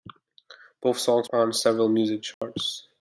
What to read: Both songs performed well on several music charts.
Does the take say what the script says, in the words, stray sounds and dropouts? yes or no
no